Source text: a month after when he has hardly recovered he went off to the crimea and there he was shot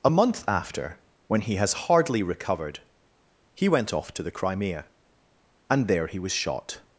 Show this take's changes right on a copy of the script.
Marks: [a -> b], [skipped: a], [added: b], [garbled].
a month after when he has hardly recovered he went off to the crimea and there he was shot